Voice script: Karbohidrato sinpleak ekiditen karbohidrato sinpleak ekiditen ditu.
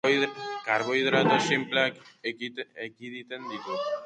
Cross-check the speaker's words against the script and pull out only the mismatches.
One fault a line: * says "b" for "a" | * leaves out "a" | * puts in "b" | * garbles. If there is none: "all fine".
* leaves out "karbohidrato sinpleak ekiditen"